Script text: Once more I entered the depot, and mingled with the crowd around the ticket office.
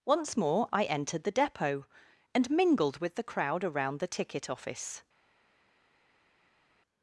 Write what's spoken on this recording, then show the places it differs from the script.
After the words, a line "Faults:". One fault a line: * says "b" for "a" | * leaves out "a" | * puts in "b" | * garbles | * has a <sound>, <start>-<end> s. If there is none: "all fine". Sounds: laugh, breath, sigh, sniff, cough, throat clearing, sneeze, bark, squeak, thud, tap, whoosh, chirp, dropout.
Once more I entered the depot, and mingled with the crowd around the ticket office.
Faults:
all fine